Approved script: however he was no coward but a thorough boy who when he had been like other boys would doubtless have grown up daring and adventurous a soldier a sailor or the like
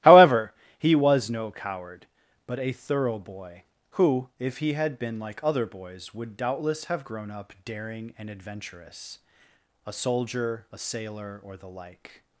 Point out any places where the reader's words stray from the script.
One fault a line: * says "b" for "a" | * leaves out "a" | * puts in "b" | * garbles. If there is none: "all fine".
* says "if" for "when"